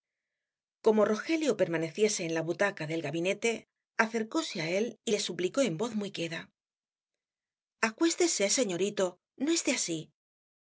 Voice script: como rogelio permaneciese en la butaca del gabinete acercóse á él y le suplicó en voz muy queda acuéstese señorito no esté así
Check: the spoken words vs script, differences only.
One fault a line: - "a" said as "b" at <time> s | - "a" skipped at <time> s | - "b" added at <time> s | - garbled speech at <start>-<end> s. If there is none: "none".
none